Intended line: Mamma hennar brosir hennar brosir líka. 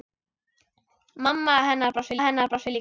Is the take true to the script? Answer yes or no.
yes